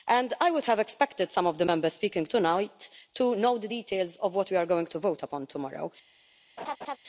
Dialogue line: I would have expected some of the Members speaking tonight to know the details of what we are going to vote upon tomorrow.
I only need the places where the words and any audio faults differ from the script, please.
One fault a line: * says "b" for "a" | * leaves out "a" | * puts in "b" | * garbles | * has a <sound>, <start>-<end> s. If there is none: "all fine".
* has a laugh, 6.6-7.0 s